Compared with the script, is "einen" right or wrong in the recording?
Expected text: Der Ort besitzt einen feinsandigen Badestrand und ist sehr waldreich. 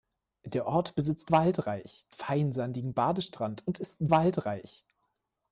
wrong